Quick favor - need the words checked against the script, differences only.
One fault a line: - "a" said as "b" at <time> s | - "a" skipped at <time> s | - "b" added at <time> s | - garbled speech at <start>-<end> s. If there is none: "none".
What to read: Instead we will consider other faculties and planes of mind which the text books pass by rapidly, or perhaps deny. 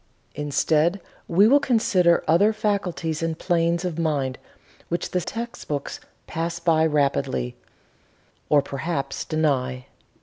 none